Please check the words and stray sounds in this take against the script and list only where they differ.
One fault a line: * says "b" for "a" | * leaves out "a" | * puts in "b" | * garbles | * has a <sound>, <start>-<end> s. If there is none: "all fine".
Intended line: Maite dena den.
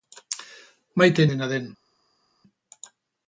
all fine